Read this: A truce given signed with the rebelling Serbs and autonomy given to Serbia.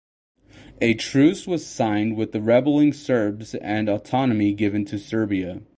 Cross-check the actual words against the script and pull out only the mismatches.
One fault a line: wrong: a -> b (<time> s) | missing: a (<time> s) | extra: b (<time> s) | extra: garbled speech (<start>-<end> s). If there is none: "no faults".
wrong: given -> was (1.4 s)